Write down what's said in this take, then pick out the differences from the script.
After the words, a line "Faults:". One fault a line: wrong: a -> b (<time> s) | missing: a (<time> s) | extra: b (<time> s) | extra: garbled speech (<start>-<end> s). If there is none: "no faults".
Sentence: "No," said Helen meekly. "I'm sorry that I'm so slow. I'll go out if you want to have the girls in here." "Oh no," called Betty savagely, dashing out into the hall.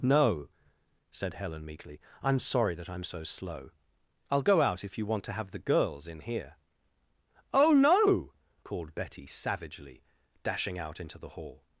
"No," said Helen meekly. "I'm sorry that I'm so slow. I'll go out if you want to have the girls in here." "Oh no," called Betty savagely, dashing out into the hall.
Faults:
no faults